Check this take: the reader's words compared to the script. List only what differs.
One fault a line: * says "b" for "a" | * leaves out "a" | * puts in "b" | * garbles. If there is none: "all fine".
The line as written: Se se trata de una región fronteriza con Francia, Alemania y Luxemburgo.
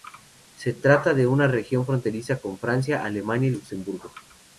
* leaves out "se"